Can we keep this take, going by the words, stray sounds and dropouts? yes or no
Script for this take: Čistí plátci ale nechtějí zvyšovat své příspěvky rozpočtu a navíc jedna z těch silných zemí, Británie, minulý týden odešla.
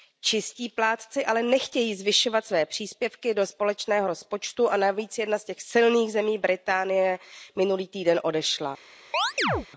no